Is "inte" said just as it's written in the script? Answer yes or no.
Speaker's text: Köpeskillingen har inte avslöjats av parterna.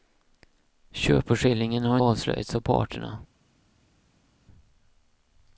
no